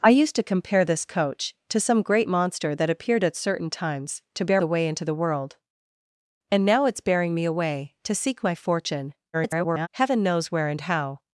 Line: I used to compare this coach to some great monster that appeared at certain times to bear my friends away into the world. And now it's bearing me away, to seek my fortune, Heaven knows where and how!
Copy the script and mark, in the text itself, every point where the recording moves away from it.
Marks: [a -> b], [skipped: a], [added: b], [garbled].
I used to compare this coach to some great monster that appeared at certain times to bear [skipped: my friends] away into the world. And now it's bearing me away, to seek my fortune, [garbled] Heaven knows where and how!